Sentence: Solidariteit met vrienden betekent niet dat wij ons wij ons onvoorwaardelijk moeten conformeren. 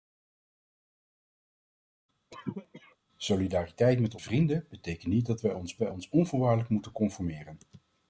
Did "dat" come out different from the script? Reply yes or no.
no